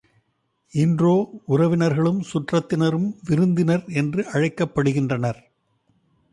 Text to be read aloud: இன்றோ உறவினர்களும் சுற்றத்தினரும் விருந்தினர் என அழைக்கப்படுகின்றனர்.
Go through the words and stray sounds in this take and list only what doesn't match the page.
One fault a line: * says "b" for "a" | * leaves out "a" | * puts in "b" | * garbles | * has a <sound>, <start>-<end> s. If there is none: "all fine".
* says "என்று" for "என"